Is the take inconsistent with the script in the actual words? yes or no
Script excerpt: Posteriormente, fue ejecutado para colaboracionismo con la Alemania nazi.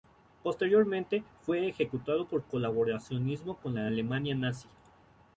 yes